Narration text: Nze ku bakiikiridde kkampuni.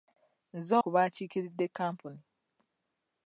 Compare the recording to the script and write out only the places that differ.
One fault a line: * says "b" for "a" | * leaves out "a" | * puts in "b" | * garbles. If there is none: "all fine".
all fine